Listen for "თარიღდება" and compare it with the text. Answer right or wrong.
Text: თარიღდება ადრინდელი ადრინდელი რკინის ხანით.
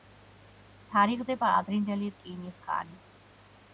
right